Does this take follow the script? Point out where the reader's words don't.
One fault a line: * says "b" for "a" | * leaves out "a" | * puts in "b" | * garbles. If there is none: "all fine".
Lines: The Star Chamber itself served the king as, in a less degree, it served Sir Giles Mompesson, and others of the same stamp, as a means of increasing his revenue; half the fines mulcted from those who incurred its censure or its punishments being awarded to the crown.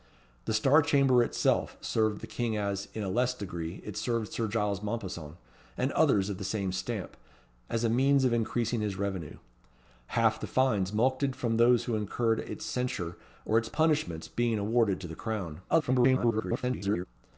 * garbles